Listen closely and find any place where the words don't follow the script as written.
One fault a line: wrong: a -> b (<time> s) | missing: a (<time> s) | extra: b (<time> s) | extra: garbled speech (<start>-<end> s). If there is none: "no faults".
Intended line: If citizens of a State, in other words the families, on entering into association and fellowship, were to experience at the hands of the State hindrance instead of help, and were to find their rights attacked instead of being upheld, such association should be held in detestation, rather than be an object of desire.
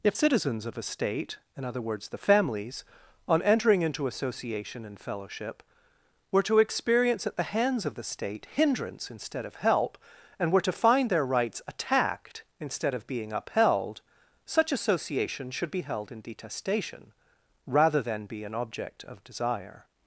no faults